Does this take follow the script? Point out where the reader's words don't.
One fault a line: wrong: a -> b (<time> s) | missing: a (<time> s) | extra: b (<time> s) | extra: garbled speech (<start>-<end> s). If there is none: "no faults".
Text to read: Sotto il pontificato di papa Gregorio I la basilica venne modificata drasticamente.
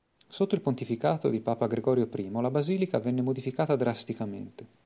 no faults